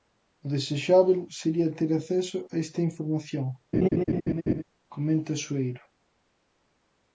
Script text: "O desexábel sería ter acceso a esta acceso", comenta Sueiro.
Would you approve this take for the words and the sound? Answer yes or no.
no